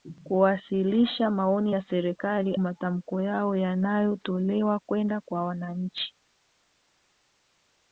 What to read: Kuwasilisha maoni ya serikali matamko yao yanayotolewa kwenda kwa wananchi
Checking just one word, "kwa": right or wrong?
right